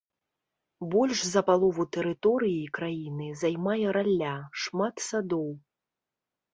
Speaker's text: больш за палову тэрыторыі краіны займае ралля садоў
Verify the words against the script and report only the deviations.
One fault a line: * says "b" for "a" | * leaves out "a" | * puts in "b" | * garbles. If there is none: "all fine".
* puts in "шмат"